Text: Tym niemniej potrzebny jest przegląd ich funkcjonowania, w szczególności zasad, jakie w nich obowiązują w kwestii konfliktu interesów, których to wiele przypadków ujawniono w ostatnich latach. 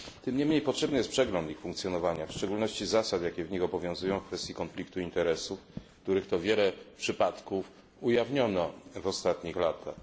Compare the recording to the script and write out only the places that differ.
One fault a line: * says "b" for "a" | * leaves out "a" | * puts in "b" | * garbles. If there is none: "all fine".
all fine